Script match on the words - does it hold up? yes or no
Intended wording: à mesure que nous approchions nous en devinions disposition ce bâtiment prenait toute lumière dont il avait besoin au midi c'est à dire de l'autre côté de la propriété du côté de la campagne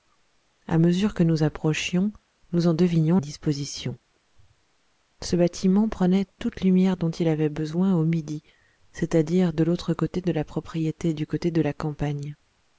yes